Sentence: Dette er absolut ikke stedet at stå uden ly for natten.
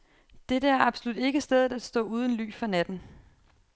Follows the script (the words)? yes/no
yes